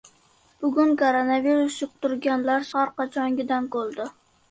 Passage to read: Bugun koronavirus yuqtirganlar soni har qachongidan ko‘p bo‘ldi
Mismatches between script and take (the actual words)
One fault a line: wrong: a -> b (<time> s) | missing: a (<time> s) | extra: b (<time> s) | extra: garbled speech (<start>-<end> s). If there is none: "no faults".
missing: soni (2.7 s)
missing: ko‘p (3.7 s)